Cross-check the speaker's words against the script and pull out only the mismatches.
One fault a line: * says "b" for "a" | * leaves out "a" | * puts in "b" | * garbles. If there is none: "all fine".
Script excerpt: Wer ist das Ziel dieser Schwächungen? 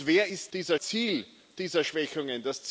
* says "dieser" for "das"